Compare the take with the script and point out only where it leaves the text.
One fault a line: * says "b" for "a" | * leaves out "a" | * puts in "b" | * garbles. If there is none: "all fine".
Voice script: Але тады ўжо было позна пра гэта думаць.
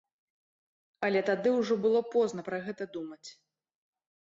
all fine